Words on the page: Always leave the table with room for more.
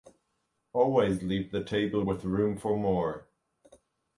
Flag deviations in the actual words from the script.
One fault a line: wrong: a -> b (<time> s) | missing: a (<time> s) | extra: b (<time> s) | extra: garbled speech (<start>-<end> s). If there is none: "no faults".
no faults